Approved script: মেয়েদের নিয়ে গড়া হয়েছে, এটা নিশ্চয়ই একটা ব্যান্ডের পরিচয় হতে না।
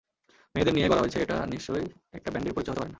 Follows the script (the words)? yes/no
no